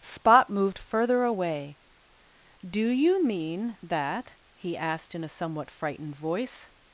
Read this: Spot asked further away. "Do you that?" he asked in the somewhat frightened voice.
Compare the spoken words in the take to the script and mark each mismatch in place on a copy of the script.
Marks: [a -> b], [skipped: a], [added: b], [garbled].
Spot [asked -> moved] further away. "Do you [added: mean] that?" he asked in [the -> a] somewhat frightened voice.